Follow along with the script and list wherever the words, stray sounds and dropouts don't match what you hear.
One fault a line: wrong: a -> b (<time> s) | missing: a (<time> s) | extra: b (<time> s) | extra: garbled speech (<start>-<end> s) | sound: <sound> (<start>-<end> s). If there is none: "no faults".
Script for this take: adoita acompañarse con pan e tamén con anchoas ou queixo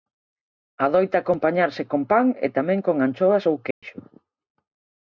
sound: dropout (3.7-3.8 s)